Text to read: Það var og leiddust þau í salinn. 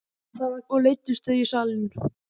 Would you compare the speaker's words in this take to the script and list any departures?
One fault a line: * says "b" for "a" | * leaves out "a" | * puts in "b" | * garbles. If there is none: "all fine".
all fine